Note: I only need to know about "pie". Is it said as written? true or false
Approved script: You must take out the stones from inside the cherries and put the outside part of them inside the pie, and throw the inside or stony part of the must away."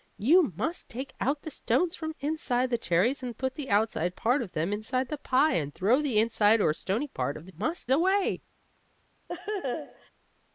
true